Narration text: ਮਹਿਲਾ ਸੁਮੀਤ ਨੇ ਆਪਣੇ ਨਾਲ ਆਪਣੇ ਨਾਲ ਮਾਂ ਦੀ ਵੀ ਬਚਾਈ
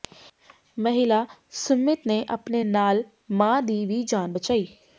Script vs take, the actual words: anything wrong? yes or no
yes